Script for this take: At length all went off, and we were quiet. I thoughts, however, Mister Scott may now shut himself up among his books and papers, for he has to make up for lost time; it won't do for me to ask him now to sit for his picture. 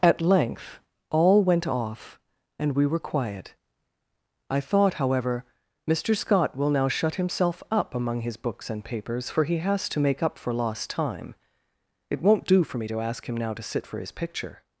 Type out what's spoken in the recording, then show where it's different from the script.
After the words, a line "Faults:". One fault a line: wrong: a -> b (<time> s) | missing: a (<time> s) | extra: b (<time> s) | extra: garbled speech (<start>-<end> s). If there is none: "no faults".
At length all went off, and we were quiet. I thought, however, Mister Scott will now shut himself up among his books and papers, for he has to make up for lost time; it won't do for me to ask him now to sit for his picture.
Faults:
wrong: thoughts -> thought (4.6 s)
wrong: may -> will (6.6 s)